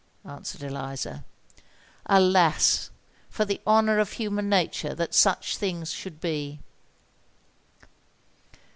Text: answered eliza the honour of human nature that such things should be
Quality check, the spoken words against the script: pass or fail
fail